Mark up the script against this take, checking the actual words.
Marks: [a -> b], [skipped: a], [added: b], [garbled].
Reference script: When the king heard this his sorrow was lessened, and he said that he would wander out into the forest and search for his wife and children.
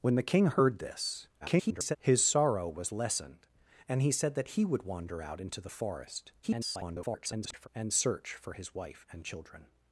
When the king heard this [garbled] his sorrow was lessened, and he said that he would wander out into the forest [garbled] and search for his wife and children.